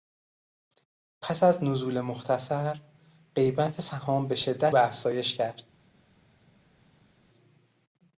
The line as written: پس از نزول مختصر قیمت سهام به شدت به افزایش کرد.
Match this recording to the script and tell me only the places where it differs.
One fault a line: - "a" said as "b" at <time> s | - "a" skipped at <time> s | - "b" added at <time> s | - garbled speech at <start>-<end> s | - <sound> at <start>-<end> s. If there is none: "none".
none